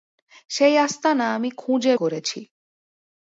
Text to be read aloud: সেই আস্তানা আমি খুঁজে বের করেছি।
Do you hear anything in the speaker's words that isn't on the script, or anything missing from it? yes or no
yes